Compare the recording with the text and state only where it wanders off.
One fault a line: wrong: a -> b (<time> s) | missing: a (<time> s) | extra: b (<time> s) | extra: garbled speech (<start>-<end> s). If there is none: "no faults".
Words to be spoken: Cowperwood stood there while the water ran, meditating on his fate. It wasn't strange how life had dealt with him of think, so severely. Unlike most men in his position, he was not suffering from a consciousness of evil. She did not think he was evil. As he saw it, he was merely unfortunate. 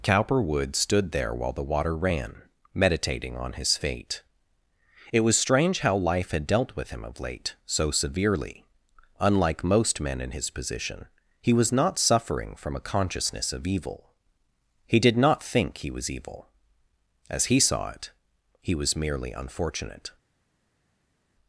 wrong: wasn't -> was (5.2 s)
wrong: think -> late (7.2 s)
wrong: She -> He (14.9 s)